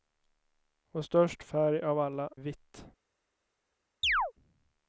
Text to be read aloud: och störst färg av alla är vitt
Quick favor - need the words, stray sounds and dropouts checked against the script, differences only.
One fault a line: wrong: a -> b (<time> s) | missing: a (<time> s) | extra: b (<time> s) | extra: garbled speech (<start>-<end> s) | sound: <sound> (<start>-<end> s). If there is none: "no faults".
missing: är (2.3 s)
sound: chirp (4.0-4.3 s)